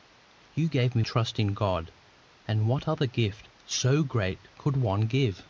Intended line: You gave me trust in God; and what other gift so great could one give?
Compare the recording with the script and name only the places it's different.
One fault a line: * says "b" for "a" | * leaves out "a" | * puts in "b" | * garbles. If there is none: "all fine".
all fine